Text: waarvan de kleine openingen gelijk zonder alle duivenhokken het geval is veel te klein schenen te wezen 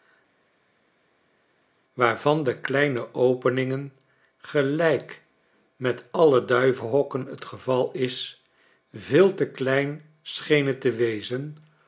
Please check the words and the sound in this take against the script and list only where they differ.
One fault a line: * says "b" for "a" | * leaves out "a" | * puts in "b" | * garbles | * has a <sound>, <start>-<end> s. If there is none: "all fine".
* says "met" for "zonder"